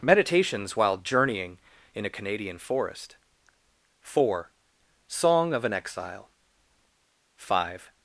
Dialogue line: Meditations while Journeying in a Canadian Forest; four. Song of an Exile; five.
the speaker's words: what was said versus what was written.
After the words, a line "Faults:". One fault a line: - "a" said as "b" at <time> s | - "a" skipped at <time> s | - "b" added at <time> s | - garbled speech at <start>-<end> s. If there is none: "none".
Meditations while Journeying in a Canadian Forest; four. Song of an Exile; five.
Faults:
none